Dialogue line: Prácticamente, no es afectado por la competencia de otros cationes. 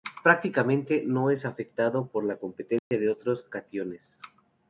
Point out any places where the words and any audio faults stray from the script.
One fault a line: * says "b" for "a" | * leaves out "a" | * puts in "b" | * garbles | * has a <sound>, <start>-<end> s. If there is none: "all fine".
* has a dropout, 2.8-2.9 s